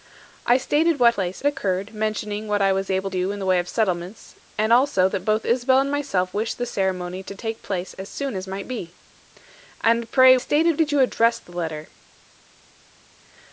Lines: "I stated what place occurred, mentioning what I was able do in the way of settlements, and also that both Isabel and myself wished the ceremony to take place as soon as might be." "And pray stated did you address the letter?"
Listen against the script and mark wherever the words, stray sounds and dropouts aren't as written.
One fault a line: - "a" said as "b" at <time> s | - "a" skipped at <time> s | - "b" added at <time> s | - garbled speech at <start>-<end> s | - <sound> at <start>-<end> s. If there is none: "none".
none